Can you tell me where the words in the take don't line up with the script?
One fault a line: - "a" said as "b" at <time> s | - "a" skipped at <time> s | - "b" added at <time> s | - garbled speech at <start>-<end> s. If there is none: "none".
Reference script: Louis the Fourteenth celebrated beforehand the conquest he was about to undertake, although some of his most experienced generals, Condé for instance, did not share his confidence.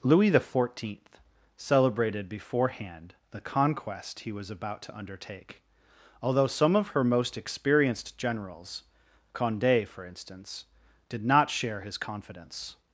- "his" said as "her" at 6.9 s